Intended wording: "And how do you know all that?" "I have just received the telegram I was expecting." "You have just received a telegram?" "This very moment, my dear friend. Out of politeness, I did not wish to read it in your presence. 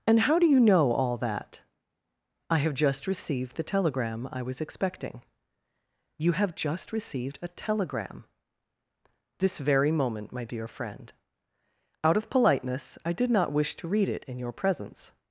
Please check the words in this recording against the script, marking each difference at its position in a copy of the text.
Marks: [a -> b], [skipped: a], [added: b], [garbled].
"And how do you know all that?" "I have just received the telegram I was expecting." "You have just received a telegram?" "This very moment, my dear friend. Out of politeness, I did not wish to read it in your presence.